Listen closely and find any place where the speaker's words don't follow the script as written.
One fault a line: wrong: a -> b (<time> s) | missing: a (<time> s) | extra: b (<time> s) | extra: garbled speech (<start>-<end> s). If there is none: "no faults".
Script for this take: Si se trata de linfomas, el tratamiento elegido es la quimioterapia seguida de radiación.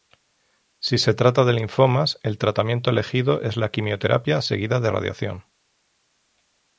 no faults